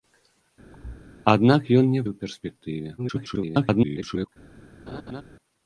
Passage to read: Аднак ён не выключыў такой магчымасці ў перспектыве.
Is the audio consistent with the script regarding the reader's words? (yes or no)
no